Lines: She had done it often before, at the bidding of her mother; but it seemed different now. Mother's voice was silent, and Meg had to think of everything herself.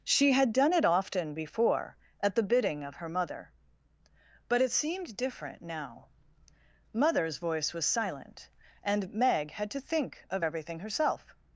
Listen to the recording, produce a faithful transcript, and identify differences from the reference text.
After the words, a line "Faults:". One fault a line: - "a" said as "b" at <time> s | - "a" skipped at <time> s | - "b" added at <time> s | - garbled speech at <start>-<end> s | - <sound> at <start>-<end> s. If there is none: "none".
She had done it often before, at the bidding of her mother; but it seemed different now. Mother's voice was silent, and Meg had to think of everything herself.
Faults:
none